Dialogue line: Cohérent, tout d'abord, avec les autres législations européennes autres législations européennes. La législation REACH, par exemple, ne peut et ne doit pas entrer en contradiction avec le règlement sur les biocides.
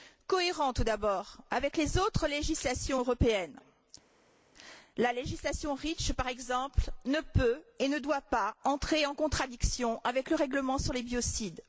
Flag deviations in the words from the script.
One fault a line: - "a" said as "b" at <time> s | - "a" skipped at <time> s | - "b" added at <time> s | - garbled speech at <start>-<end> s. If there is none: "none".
- "autres législations européennes" skipped at 3.6 s